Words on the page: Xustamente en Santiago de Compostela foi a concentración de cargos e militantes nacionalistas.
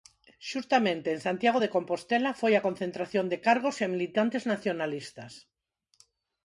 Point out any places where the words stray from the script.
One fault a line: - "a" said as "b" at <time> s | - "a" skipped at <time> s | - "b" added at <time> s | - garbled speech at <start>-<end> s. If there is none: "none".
none